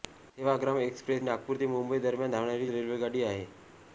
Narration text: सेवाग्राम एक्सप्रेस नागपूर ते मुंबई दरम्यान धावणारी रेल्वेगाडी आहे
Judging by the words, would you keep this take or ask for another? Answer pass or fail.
pass